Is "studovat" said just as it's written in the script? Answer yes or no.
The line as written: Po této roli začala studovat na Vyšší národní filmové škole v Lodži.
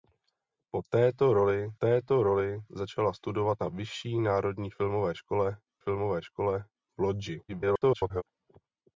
yes